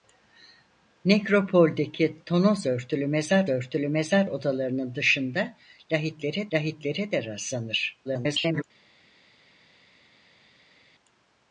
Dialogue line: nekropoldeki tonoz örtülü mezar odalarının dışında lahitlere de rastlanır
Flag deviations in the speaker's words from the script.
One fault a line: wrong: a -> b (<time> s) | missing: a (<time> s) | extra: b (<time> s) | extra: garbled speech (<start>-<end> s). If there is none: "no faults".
extra: örtülü mezar (3.5 s)
extra: lahitlere (6.5 s)
extra: garbled speech (8.0-8.6 s)